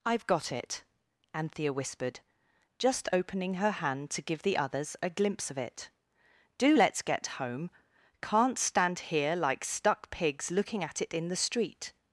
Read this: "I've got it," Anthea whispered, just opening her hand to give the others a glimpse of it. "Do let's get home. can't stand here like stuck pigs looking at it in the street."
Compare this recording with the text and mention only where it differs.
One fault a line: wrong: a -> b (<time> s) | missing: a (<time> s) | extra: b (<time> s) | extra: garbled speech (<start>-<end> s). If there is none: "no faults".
no faults